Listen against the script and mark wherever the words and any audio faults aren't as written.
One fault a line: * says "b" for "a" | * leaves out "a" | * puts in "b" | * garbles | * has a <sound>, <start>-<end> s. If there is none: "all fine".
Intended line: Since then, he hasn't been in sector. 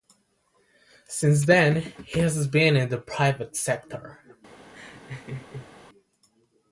* says "has" for "hasn't"
* puts in "the private"
* has a laugh, 4.7-5.7 s